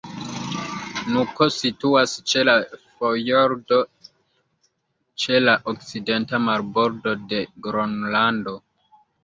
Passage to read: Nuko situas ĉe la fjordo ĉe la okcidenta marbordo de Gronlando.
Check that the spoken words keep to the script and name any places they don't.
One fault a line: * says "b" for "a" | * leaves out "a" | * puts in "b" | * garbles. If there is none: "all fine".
all fine